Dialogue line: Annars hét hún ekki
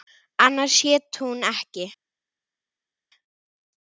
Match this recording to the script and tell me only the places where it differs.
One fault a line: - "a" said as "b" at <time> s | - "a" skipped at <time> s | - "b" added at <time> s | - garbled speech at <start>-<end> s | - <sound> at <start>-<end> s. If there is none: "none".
none